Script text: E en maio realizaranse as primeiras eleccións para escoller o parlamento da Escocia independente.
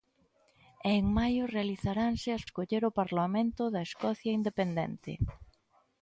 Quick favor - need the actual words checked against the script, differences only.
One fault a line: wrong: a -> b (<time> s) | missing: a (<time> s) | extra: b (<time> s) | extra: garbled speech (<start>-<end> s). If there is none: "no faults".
missing: primeiras eleccións para (2.4 s)